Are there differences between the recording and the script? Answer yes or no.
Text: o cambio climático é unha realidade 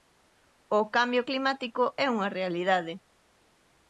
no